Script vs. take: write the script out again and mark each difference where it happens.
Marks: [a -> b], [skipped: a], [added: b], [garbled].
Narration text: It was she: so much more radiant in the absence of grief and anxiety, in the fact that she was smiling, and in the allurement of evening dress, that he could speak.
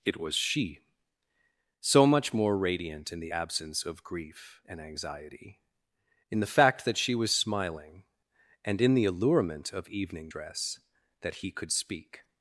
It was she: so much more radiant in the absence of grief and anxiety, in the fact that she was smiling, and in the allurement of evening dress, that he could speak.